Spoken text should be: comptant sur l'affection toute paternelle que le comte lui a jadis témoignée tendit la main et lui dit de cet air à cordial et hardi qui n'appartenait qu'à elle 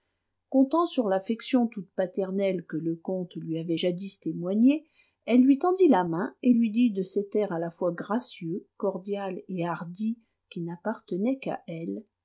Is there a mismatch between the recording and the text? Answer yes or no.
yes